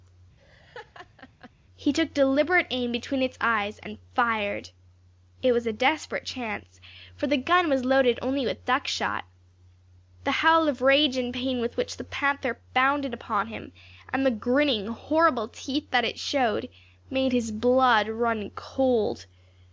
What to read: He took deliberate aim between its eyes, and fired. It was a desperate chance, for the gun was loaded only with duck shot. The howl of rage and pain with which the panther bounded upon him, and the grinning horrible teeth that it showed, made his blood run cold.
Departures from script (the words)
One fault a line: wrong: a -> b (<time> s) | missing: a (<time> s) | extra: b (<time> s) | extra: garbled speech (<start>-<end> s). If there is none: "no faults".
no faults